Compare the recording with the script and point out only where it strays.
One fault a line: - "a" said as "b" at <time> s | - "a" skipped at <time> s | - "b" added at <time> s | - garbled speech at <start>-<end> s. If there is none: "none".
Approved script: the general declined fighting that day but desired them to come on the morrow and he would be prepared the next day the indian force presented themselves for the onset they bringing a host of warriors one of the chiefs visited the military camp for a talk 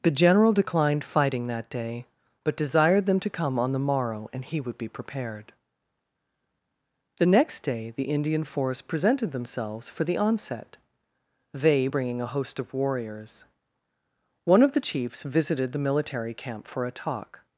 none